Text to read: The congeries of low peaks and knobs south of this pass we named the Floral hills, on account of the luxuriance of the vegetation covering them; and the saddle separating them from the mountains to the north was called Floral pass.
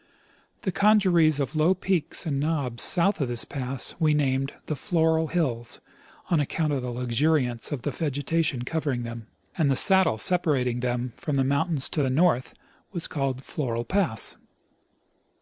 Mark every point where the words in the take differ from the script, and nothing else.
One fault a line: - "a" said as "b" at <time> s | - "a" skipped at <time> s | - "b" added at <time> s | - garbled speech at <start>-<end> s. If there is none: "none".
none